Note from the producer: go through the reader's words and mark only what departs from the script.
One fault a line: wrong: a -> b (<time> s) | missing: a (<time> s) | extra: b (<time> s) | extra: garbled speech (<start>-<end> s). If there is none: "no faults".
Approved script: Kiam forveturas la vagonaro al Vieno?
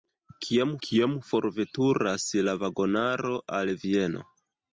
extra: kiam (0.9 s)